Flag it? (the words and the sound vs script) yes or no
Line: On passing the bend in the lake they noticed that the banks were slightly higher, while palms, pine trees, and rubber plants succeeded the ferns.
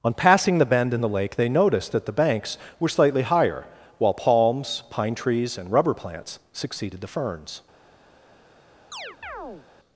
yes